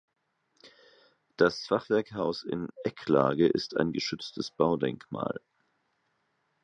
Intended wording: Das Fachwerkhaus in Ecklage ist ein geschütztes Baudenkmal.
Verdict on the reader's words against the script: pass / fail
pass